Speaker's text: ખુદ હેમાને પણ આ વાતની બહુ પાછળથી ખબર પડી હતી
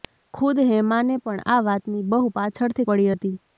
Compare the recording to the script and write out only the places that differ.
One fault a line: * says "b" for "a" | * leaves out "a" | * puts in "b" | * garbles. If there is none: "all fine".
* leaves out "ખબર"